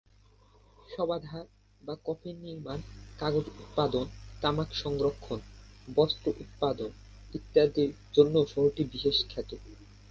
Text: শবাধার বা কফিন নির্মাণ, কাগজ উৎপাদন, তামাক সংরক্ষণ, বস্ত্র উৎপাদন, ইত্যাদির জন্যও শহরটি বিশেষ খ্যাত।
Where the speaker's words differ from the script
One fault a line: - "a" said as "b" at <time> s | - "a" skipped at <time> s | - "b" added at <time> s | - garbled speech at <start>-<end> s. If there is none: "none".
none